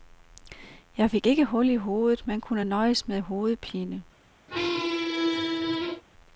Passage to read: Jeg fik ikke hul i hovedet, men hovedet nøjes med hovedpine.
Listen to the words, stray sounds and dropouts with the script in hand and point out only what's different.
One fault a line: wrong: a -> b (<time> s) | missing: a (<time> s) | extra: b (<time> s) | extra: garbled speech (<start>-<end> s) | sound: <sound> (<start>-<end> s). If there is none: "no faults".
wrong: hovedet -> kunne (2.4 s)
sound: squeak (4.5-6.0 s)